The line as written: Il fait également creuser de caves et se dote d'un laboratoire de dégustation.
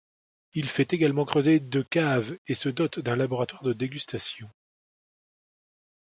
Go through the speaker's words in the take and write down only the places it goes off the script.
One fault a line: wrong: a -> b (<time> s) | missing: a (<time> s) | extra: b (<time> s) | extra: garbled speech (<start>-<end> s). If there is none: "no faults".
no faults